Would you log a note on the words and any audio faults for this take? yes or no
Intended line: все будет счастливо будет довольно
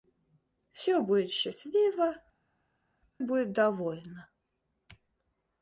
no